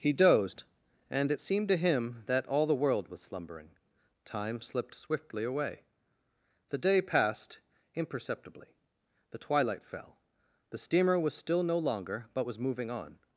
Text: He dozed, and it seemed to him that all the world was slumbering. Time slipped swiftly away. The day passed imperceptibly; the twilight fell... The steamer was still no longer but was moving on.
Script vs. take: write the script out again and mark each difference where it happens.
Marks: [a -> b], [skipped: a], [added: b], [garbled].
He dozed, and it seemed to him that all the world was slumbering. Time slipped swiftly away. The day passed imperceptibly; the twilight fell... The steamer was still no longer but was moving on.